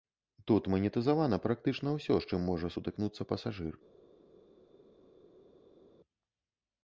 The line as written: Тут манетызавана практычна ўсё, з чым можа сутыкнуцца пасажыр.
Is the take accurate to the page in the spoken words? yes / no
yes